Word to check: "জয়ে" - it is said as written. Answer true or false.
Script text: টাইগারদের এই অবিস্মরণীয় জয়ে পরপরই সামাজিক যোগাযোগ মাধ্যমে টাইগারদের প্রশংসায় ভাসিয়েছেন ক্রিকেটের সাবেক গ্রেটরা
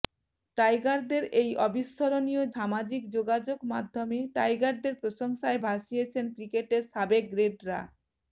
false